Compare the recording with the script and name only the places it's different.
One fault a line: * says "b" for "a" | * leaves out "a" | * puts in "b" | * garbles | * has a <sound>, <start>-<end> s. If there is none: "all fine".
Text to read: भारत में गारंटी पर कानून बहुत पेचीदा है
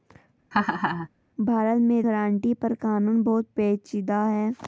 * has a laugh, 0.5-1.1 s